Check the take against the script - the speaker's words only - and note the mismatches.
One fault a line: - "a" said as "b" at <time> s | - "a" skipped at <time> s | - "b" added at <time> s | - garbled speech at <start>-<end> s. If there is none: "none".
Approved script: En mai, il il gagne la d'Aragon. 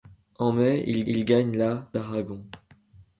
none